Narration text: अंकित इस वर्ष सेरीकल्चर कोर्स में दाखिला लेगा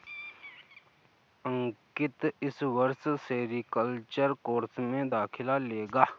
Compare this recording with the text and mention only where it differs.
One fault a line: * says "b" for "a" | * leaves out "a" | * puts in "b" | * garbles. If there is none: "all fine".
all fine